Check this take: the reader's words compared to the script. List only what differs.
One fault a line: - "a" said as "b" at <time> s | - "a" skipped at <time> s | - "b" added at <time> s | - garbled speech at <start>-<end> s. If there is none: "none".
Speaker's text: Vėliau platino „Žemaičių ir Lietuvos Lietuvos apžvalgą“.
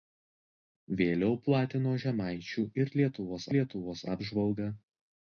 none